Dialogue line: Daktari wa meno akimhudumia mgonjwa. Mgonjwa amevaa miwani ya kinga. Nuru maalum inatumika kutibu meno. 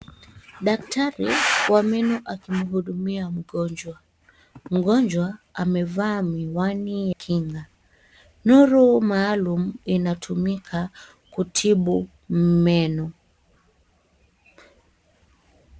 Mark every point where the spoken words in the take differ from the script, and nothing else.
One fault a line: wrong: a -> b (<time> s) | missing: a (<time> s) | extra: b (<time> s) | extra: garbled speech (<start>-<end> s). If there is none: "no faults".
missing: ya (7.1 s)